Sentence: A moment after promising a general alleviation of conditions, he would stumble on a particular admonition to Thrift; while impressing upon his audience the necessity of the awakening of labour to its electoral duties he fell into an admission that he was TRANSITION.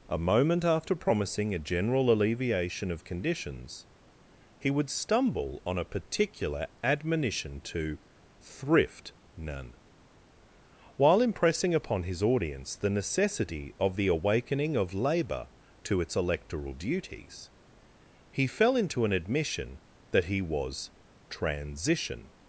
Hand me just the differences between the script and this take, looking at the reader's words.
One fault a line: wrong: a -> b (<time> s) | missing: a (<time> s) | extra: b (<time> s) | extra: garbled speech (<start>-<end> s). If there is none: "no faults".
extra: none (9.3 s)